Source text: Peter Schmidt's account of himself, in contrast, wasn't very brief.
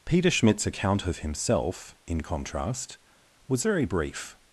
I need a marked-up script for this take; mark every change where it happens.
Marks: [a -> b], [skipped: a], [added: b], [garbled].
Peter Schmidt's account of himself, in contrast, [wasn't -> was] very brief.